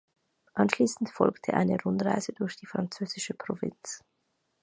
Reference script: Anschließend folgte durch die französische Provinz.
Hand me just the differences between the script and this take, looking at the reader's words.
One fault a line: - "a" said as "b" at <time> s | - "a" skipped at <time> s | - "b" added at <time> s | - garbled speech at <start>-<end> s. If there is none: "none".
- "eine Rundreise" added at 1.5 s